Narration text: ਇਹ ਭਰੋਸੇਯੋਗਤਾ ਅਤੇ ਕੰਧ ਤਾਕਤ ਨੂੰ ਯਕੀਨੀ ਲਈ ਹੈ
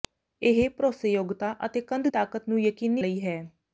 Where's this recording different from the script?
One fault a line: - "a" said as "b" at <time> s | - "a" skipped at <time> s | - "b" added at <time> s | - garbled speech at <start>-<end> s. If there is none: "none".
none